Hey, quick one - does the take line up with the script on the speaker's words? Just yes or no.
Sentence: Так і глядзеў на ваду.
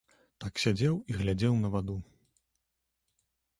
no